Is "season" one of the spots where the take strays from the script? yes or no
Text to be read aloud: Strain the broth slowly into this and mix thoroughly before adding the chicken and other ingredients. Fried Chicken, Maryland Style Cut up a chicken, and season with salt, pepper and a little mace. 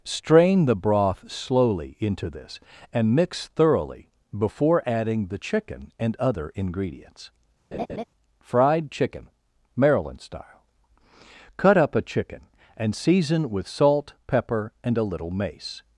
no